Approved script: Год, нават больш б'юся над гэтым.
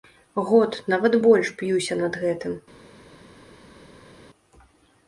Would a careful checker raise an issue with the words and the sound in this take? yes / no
no